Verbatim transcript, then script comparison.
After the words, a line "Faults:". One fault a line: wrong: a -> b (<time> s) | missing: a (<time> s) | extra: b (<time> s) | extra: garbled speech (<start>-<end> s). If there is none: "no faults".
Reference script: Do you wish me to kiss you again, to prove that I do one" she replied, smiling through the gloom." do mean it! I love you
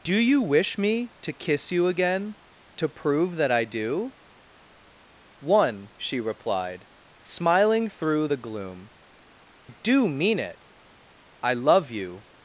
Do you wish me to kiss you again, to prove that I do one" she replied, smiling through the gloom." do mean it! I love you
Faults:
no faults